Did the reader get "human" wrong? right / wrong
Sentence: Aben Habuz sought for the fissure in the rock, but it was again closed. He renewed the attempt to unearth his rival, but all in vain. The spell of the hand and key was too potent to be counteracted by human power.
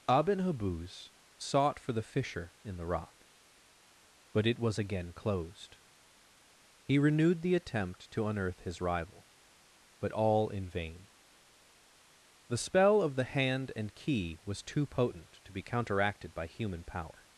right